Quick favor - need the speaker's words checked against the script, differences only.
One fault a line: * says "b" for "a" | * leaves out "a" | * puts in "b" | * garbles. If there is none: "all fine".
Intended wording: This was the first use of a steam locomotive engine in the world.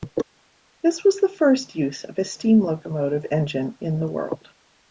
all fine